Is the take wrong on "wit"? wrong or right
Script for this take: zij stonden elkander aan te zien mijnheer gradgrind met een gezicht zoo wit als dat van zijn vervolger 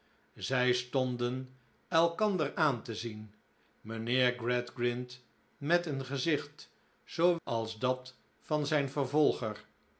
wrong